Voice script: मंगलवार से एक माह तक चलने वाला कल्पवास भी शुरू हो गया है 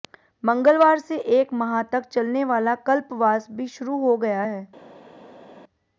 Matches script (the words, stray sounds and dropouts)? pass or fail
pass